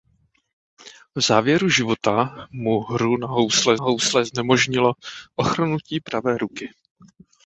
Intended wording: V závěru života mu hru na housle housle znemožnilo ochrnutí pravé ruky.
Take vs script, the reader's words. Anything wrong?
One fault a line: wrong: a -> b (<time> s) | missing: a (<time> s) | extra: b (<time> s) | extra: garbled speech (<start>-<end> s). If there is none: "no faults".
no faults